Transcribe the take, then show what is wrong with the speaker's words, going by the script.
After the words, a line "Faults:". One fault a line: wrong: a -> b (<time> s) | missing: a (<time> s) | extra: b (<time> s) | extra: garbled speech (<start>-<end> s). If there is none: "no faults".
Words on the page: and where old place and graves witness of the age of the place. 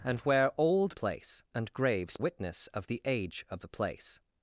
and where old place and graves witness of the age of the place.
Faults:
no faults